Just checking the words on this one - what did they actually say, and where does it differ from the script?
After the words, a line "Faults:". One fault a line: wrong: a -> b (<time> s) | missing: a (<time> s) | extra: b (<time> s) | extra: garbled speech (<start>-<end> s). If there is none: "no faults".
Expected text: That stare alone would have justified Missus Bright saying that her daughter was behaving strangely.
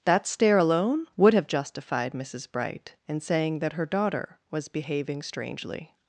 That stare alone would have justified Missus Bright in saying that her daughter was behaving strangely.
Faults:
extra: in (3.1 s)